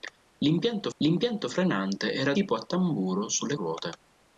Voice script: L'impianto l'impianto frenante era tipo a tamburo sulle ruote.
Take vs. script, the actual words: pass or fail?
pass